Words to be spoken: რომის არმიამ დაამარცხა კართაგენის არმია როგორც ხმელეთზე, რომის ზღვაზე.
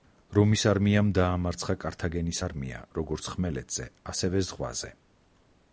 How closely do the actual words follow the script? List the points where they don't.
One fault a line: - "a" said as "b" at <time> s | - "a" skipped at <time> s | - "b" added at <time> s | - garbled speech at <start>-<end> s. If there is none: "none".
- "რომის" said as "ასევე" at 4.1 s